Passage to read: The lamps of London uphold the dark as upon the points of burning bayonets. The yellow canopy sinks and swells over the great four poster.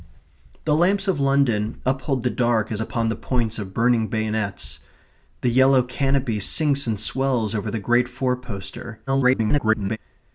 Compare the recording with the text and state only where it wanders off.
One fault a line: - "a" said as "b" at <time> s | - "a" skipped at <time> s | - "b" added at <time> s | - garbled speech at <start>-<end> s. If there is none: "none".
- garbled speech at 9.1-10.0 s